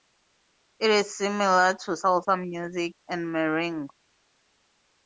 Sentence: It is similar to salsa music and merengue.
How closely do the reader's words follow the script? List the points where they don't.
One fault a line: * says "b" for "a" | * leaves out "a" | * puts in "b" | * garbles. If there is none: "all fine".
all fine